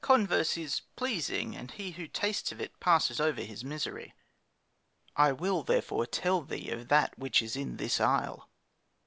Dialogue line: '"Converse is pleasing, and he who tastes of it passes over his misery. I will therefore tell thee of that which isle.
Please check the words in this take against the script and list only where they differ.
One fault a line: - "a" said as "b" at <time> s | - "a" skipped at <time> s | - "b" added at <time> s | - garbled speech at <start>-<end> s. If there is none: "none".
- "is in this" added at 7.4 s